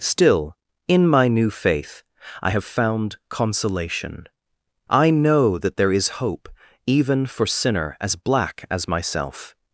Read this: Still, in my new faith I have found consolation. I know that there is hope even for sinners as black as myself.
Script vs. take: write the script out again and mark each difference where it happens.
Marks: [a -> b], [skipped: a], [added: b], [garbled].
Still, in my new faith I have found consolation. I know that there is hope even for [sinners -> sinner] as black as myself.